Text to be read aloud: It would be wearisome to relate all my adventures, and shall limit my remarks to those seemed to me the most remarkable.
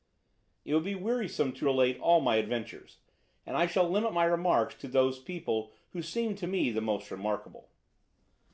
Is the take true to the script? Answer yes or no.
no